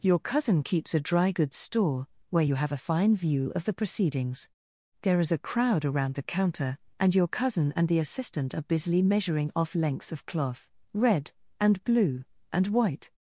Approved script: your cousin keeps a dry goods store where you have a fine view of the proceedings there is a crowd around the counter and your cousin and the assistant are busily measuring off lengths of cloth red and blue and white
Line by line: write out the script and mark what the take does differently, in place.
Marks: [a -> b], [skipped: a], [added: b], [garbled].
your cousin keeps a dry goods store where you have a fine view of the proceedings there is a crowd around the counter and your cousin and the assistant are busily measuring off lengths of cloth red and blue and white